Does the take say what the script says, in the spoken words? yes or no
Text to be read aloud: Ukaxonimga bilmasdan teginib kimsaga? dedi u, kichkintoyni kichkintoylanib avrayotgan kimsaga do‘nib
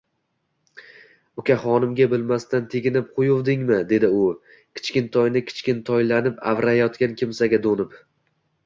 no